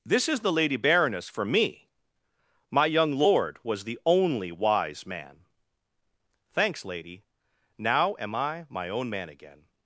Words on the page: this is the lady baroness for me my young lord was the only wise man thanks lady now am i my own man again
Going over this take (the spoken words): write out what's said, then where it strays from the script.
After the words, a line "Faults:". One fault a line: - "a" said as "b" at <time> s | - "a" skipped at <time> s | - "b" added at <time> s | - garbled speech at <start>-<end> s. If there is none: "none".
this is the lady baroness for me my young lord was the only wise man thanks lady now am i my own man again
Faults:
none